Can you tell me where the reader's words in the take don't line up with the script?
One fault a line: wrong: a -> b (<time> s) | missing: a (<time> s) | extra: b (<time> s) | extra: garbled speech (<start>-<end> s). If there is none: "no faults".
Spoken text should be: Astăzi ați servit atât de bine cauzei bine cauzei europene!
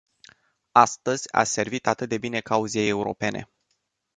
missing: bine cauzei (2.9 s)